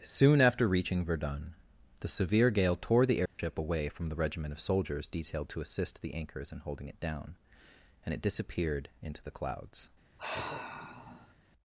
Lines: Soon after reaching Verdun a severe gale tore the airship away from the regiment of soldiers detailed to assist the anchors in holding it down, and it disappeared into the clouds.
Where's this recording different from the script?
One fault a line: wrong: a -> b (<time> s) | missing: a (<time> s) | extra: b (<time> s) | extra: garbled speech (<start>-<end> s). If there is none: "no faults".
wrong: a -> the (2.0 s)